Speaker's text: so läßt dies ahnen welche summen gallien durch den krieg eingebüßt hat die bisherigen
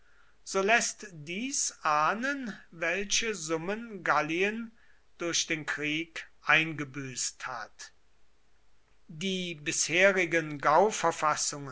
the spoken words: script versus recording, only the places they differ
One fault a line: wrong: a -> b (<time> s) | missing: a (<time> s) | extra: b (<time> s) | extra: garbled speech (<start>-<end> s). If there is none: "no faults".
no faults